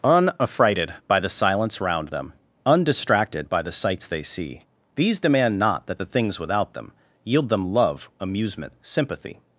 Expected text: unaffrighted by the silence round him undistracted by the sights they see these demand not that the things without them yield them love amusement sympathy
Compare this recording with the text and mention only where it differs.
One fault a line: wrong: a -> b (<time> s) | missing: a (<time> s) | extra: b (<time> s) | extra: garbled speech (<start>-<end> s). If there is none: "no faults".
wrong: him -> them (2.1 s)